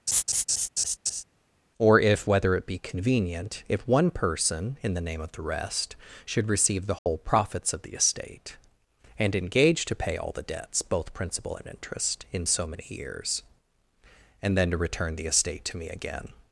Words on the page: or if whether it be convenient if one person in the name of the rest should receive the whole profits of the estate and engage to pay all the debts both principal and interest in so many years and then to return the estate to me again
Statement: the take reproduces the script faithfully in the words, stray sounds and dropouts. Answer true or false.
false